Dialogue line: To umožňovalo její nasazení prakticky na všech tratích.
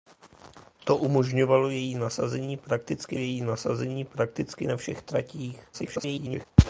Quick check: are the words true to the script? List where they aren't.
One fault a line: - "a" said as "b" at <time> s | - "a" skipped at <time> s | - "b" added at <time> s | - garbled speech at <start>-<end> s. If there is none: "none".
- "její nasazení prakticky" added at 3.1 s
- garbled speech at 5.7-6.5 s